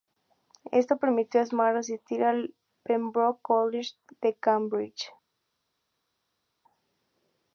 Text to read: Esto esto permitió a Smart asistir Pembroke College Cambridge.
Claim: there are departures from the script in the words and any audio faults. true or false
true